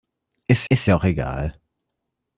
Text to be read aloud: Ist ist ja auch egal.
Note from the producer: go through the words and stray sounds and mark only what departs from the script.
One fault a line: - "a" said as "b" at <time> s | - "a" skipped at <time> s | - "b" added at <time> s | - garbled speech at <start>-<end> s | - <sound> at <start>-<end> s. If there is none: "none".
none